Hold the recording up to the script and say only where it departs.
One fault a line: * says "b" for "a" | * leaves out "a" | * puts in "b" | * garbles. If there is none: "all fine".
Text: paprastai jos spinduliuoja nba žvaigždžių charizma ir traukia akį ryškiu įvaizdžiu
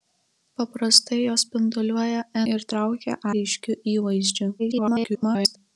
* leaves out "nba žvaigždžių charizma"
* leaves out "akį"
* garbles